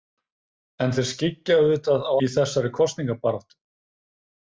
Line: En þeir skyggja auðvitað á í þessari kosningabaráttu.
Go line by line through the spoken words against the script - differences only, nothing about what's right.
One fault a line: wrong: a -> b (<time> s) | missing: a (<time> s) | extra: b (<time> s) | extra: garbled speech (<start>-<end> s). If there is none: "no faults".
no faults